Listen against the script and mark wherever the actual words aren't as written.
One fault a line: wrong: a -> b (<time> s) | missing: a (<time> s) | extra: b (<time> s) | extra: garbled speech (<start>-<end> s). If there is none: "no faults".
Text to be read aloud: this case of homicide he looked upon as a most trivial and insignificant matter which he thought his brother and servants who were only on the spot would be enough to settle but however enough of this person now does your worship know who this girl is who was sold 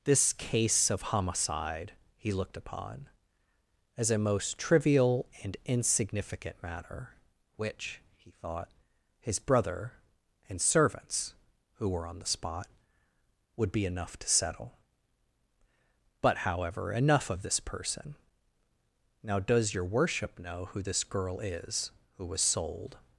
missing: only (12.0 s)